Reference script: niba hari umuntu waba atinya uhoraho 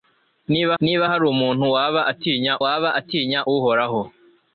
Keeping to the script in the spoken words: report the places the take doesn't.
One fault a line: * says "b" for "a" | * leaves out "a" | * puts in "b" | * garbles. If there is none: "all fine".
* puts in "niba"
* puts in "waba atinya"